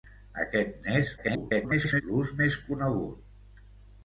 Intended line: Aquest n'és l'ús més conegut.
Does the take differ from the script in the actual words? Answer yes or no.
yes